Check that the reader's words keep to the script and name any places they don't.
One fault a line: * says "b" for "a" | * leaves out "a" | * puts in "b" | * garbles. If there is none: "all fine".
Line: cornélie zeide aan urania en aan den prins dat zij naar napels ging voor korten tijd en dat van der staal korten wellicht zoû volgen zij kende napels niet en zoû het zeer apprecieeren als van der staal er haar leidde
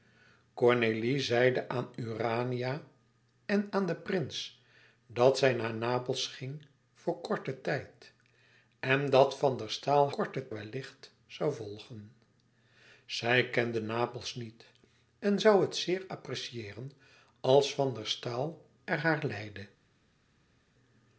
all fine